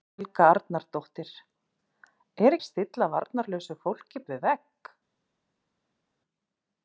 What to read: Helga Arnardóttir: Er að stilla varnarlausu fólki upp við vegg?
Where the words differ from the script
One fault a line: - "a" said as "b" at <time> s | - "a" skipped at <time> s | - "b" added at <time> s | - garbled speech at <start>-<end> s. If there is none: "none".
none